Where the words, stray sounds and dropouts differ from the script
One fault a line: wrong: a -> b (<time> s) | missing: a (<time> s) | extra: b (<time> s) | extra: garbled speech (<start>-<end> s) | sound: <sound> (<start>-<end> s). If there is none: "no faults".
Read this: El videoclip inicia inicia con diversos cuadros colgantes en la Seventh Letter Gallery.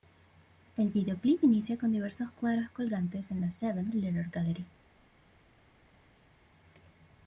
missing: inicia (1.8 s)